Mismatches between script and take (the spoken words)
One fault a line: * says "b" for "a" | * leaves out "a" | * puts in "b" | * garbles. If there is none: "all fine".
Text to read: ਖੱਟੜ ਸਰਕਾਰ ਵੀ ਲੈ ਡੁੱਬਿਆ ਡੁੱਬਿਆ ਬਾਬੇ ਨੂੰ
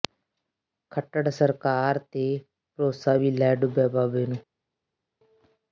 * puts in "ਤੇ ਭਰੋਸਾ"
* leaves out "ਡੁੱਬਿਆ"